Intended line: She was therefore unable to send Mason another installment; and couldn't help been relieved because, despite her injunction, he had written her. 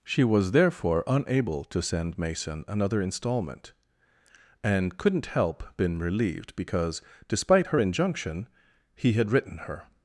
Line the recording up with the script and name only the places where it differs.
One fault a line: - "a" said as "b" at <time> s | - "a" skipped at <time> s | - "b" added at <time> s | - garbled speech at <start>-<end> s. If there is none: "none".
none